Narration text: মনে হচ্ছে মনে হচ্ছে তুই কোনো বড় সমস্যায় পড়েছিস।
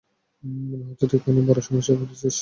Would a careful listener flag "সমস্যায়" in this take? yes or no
no